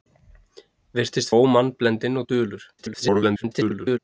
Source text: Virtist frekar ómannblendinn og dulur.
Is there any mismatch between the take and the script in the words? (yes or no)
yes